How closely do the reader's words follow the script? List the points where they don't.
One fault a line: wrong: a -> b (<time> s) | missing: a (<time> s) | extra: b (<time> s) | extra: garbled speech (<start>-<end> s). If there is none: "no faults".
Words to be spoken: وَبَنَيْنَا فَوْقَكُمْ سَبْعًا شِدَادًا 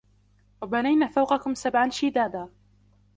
no faults